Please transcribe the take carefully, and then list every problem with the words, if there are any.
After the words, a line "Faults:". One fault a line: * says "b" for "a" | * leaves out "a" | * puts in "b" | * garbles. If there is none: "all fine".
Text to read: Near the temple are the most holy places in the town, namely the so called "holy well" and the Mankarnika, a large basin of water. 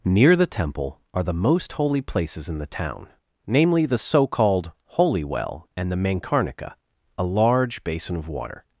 Near the temple are the most holy places in the town, namely the so called "holy well" and the Mankarnika, a large basin of water.
Faults:
all fine